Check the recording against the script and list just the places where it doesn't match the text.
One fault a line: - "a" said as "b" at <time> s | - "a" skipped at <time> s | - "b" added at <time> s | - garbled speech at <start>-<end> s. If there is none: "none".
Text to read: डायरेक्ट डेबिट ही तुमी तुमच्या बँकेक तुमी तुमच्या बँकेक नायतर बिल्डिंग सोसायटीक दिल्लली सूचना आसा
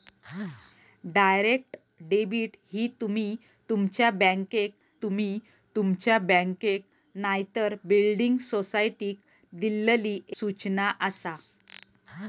none